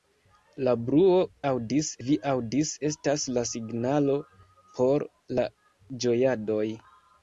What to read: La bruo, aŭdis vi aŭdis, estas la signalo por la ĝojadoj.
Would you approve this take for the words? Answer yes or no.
yes